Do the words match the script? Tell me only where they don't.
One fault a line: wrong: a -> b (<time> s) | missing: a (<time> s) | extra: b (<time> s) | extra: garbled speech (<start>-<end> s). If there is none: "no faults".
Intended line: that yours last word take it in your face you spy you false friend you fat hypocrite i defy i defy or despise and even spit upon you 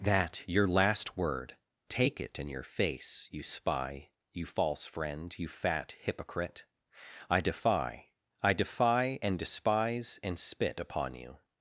wrong: yours -> your (0.5 s)
wrong: or -> and (9.2 s)
missing: even (10.4 s)